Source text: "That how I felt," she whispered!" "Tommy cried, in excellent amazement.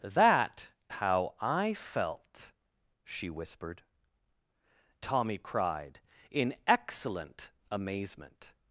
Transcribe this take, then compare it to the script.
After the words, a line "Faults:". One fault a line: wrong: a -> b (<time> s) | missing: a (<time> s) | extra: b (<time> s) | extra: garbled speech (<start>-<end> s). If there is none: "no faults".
"That how I felt," she whispered!" "Tommy cried, in excellent amazement.
Faults:
no faults